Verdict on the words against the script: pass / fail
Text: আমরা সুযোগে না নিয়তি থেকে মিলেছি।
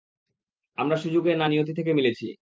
pass